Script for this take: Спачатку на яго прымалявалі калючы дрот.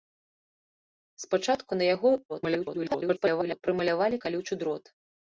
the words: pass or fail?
fail